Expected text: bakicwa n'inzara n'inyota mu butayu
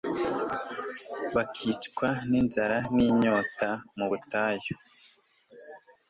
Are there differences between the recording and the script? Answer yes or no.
no